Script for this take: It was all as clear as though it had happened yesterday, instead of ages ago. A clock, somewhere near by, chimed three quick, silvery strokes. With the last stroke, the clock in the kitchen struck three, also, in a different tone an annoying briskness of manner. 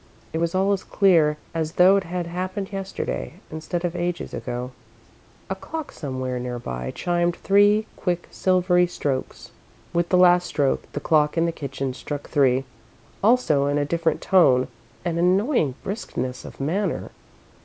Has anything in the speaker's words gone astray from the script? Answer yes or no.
no